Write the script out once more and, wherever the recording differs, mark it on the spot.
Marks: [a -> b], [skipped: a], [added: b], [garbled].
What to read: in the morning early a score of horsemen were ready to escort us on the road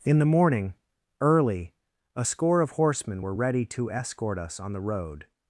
in the morning early a score of horsemen were ready to escort us on the road